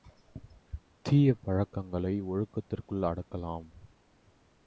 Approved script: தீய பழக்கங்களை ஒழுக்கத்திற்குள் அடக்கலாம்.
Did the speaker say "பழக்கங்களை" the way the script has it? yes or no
yes